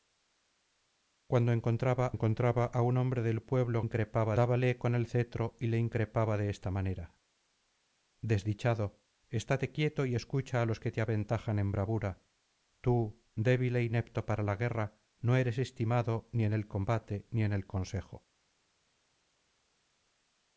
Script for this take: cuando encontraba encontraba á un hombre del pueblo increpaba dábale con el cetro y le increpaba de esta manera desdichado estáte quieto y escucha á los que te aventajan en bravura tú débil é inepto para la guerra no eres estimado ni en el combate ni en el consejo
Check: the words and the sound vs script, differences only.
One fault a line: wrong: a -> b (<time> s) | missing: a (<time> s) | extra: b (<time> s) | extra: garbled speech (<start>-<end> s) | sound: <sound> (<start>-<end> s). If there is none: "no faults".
no faults